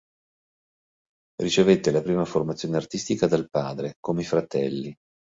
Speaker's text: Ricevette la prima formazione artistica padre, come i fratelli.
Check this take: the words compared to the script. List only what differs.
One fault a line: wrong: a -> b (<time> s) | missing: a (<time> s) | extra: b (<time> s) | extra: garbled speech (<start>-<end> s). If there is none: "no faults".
extra: dal (3.3 s)